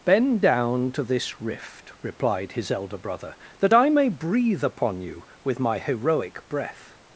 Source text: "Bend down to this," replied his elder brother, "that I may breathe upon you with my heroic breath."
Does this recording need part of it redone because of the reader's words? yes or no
yes